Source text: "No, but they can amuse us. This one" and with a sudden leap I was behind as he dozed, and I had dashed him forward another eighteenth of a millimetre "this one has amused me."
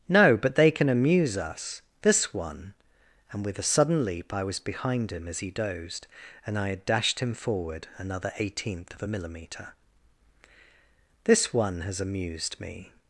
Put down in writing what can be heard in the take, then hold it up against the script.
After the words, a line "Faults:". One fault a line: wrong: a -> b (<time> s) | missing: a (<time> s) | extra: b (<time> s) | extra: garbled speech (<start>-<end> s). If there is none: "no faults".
"No, but they can amuse us. This one" and with a sudden leap I was behind him as he dozed, and I had dashed him forward another eighteenth of a millimetre "this one has amused me."
Faults:
extra: him (5.1 s)